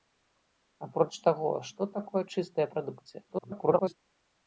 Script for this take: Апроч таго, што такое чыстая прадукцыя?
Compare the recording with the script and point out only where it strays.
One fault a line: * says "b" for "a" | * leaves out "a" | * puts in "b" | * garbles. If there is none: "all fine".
* garbles